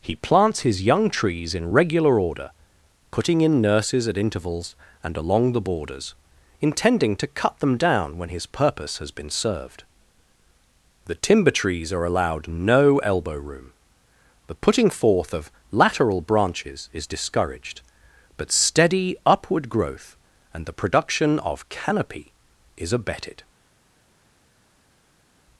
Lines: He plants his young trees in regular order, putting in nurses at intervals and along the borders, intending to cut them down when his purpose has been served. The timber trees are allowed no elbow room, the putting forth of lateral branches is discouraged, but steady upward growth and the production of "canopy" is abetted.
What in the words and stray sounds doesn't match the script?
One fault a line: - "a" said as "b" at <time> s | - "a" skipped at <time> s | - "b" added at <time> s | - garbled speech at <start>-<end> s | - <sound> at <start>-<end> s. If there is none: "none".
none